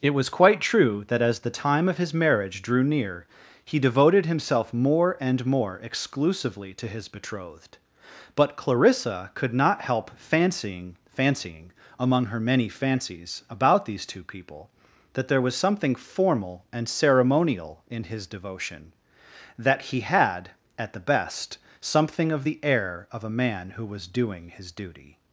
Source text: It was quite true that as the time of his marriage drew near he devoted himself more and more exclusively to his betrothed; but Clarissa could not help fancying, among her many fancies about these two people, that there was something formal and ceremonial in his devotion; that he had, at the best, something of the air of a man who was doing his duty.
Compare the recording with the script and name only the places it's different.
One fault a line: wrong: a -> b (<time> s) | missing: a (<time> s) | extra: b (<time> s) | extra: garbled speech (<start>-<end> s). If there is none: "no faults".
extra: fancying (11.1 s)